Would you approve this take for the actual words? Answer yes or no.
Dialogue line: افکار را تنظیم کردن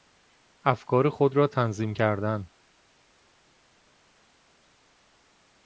no